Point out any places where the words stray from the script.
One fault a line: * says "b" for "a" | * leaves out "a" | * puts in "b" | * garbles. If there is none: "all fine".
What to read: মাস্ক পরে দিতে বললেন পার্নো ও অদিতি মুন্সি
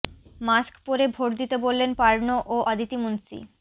* puts in "ভোট"